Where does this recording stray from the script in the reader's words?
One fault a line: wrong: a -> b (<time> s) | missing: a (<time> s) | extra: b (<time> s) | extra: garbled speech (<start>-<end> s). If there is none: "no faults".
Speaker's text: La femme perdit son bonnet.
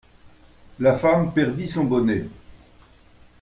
no faults